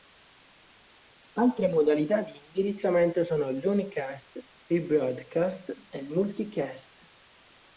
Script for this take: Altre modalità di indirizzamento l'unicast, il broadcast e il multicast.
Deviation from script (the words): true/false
true